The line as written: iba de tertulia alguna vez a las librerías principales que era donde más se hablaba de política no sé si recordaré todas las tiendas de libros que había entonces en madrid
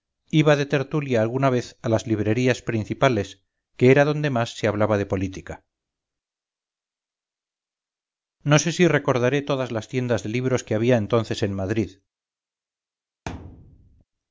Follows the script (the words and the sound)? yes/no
no